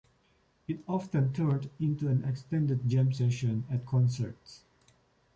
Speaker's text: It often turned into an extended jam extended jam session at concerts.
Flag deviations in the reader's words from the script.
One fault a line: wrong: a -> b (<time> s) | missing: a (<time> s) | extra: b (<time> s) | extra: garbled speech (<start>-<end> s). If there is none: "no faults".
missing: extended jam (3.1 s)